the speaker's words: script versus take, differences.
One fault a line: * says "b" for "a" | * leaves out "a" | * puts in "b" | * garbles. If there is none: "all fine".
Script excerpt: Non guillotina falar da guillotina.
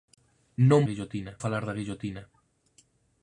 all fine